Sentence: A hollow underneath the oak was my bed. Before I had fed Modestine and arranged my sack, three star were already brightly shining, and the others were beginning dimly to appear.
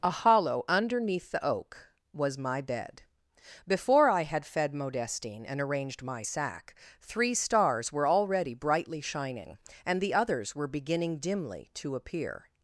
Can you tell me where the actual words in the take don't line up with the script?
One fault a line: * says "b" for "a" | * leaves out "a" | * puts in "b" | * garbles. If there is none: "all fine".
* says "stars" for "star"